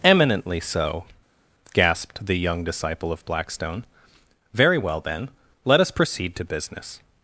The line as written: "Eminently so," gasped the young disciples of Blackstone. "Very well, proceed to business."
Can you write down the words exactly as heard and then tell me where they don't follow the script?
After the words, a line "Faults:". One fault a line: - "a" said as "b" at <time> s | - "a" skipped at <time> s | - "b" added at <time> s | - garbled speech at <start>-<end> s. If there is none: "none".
"Eminently so," gasped the young disciple of Blackstone. "Very well, then; let us proceed to business."
Faults:
- "disciples" said as "disciple" at 2.6 s
- "then let us" added at 5.0 s